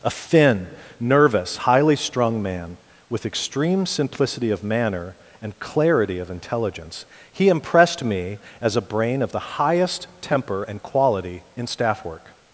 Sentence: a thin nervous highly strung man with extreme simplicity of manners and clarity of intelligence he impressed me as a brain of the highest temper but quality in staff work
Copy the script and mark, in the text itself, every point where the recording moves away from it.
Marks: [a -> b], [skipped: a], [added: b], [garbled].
a thin nervous highly strung man with extreme simplicity of [manners -> manner] and clarity of intelligence he impressed me as a brain of the highest temper [but -> and] quality in staff work